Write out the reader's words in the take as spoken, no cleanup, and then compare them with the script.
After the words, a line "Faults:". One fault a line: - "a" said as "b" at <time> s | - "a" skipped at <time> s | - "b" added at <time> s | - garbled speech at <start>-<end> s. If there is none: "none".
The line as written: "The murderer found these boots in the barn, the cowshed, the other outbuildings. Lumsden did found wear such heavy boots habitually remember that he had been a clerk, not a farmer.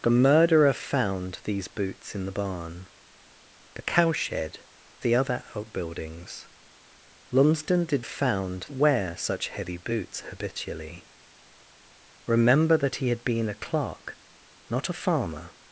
"The murderer found these boots in the barn, the cowshed, the other outbuildings. Lumsden did found wear such heavy boots habitually remember that he had been a clerk, not a farmer.
Faults:
none